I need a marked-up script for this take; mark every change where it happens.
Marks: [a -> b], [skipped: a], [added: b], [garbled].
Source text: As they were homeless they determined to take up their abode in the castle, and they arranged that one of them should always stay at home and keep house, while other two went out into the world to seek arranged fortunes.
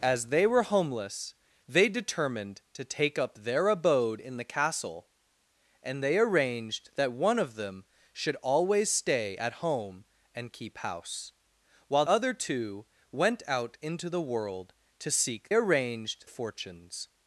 As they were homeless they determined to take up their abode in the castle, and they arranged that one of them should always stay at home and keep house, while other two went out into the world to seek arranged fortunes.